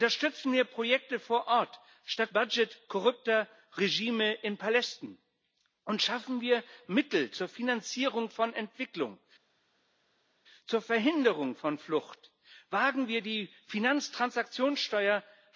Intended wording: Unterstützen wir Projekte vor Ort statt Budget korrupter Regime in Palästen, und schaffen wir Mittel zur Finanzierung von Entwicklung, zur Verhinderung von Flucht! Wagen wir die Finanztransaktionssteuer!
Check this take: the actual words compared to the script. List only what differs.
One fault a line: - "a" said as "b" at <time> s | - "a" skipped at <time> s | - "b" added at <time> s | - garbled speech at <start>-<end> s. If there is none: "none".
none